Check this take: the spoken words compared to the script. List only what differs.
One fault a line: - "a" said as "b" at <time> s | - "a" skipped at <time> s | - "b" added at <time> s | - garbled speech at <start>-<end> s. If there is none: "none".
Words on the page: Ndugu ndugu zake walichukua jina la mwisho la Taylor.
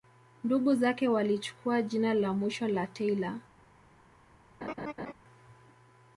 - "ndugu" skipped at 0.8 s